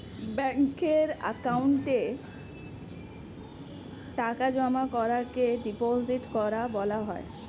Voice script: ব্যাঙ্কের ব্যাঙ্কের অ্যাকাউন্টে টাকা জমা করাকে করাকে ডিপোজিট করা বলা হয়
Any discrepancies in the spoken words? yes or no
yes